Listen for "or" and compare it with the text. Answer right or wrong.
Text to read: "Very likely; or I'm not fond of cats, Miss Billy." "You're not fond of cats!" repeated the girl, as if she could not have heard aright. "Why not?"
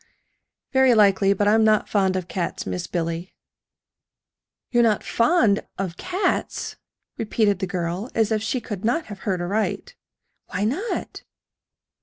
wrong